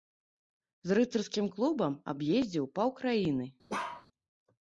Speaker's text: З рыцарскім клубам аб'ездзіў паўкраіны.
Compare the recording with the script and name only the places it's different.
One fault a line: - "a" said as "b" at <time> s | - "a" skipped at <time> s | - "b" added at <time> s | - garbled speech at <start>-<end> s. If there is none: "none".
none